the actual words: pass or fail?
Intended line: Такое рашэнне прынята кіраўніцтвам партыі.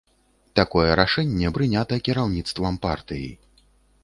pass